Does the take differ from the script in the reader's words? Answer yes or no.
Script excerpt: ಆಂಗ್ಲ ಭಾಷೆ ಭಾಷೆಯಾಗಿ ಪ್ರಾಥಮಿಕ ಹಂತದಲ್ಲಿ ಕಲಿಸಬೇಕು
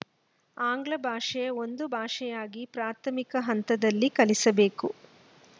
yes